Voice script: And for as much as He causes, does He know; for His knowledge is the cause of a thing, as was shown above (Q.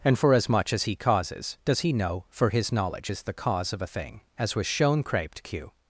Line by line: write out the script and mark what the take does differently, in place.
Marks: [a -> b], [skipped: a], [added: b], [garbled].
And for as much as He causes, does He know; for His knowledge is the cause of a thing, as was shown [above -> craped] (Q.